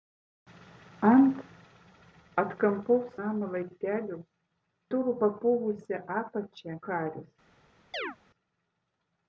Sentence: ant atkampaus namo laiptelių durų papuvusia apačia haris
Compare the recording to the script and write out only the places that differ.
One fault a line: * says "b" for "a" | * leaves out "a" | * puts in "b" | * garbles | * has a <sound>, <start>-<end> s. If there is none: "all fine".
* has a chirp, 7.9-8.2 s